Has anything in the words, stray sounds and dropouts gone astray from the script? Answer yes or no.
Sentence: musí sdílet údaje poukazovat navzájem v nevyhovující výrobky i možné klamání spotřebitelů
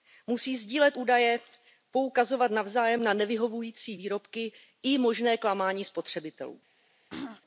yes